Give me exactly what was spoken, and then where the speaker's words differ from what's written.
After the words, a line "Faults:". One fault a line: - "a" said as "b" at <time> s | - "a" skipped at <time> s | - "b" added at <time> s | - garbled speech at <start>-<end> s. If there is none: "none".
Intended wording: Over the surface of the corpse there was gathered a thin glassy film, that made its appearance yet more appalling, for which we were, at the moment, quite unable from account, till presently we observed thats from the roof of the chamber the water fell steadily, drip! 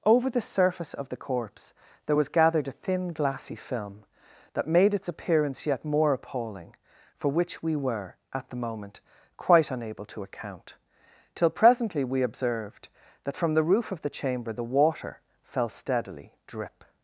Over the surface of the corpse there was gathered a thin glassy film, that made its appearance yet more appalling, for which we were, at the moment, quite unable to account, till presently we observed that from the roof of the chamber the water fell steadily, drip!
Faults:
- "from" said as "to" at 10.1 s
- "thats" said as "that" at 13.2 s